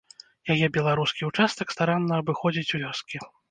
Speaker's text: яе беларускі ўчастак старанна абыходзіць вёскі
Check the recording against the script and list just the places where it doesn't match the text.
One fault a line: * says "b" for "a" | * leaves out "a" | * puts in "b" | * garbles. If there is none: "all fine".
all fine